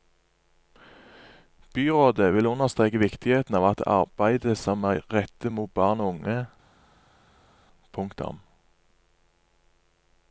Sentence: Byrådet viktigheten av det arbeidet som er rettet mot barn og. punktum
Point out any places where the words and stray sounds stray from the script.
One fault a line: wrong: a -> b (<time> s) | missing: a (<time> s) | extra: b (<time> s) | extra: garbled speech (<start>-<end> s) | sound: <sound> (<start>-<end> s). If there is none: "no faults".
extra: vil understreke (2.3 s)
extra: unge (6.2 s)